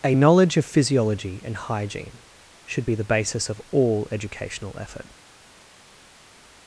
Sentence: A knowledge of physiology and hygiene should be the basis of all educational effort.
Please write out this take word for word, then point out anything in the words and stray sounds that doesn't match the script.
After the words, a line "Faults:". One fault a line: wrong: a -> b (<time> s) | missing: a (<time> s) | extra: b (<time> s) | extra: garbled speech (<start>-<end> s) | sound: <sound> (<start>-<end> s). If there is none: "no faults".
A knowledge of physiology and hygiene should be the basis of all educational effort.
Faults:
no faults